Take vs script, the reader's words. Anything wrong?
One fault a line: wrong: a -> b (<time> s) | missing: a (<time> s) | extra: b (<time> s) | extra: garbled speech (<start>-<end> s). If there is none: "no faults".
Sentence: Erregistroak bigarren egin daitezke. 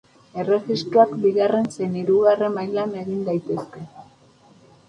extra: zein hirugarren mailan (1.8 s)